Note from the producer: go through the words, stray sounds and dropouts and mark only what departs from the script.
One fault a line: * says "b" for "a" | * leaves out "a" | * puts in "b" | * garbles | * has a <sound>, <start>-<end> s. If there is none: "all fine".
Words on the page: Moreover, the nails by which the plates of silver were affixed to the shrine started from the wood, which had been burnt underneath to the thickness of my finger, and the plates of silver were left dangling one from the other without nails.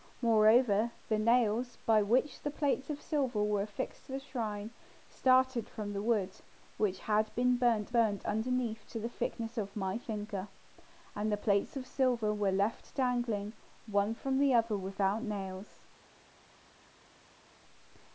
* puts in "burnt"